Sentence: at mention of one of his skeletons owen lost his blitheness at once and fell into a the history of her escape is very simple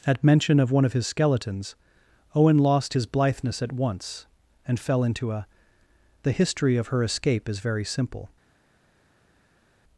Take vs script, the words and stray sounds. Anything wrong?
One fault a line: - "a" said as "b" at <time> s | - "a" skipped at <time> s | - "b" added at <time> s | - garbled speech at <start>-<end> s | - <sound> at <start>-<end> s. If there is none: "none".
none